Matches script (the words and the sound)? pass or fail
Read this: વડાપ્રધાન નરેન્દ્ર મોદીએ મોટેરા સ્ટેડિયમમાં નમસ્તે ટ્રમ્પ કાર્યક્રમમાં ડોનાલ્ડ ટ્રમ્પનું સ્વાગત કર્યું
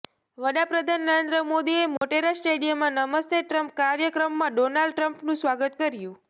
fail